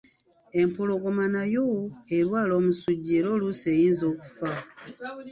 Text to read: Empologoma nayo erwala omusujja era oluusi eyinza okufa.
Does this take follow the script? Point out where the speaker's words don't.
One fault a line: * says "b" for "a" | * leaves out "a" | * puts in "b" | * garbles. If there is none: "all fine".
all fine